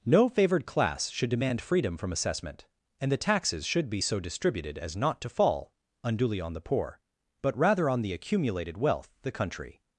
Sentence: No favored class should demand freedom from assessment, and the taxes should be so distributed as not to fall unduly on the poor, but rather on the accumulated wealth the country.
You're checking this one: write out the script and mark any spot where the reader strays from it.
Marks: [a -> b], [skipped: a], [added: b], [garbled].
No favored class should demand freedom from assessment, and the taxes should be so distributed as not to fall unduly on the poor, but rather on the accumulated wealth the country.